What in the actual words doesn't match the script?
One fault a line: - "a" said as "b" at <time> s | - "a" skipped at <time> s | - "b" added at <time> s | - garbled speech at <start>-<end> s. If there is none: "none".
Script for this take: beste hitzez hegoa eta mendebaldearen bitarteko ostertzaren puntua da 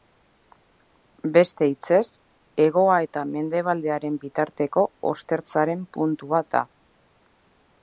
none